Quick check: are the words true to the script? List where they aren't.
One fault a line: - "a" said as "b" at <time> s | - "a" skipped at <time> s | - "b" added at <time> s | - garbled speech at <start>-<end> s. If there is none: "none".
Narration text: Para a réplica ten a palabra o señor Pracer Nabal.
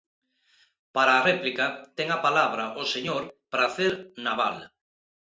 none